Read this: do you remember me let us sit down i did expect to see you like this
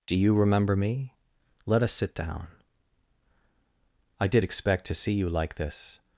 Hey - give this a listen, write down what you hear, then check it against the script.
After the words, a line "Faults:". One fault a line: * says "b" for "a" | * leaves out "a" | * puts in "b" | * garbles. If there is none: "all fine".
do you remember me let us sit down i did expect to see you like this
Faults:
all fine